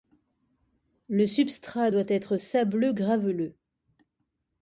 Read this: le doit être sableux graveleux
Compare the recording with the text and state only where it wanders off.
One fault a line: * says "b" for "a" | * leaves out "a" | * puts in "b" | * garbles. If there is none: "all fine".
* puts in "substrat"